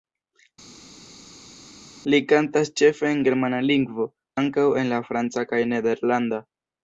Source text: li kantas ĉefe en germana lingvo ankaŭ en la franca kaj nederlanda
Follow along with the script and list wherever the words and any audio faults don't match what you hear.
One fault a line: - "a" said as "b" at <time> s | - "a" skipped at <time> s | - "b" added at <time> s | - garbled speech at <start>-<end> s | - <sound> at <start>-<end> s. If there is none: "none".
none